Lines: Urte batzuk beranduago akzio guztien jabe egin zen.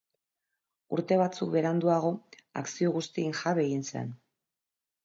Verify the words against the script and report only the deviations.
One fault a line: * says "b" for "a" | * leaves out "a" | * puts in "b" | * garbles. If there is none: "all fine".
all fine